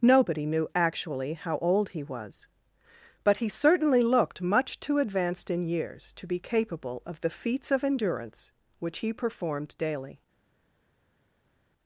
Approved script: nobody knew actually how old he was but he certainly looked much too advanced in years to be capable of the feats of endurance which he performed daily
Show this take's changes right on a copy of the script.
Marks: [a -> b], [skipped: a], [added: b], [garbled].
nobody knew actually how old he was but he certainly looked much too advanced in years to be capable of the feats of endurance which he performed daily